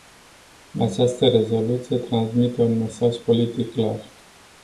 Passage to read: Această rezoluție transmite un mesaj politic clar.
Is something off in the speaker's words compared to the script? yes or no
no